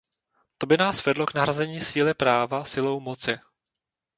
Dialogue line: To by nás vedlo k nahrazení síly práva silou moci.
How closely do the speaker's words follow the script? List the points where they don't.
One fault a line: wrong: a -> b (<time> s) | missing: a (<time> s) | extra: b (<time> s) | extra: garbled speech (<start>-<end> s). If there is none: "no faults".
no faults